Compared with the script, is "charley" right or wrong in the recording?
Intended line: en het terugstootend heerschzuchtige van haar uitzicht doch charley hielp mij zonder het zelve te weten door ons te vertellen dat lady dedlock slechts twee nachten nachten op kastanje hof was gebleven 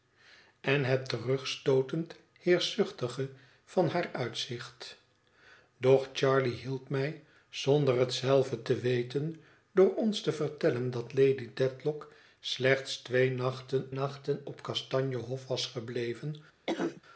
right